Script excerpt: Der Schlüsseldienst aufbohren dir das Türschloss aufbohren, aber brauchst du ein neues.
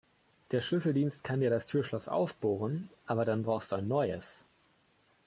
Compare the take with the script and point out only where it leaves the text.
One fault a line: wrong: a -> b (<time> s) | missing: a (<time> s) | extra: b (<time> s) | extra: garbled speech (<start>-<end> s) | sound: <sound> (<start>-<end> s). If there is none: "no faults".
wrong: aufbohren -> kann (1.2 s)
extra: dann (3.2 s)